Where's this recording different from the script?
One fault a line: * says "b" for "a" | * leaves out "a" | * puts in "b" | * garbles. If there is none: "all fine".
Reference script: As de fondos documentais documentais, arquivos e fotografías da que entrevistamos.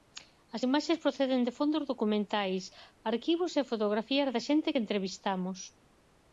* puts in "imaxes proceden"
* leaves out "documentais"
* puts in "xente"